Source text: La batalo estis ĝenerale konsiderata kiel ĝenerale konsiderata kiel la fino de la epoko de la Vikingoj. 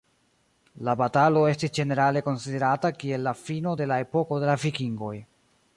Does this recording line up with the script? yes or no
no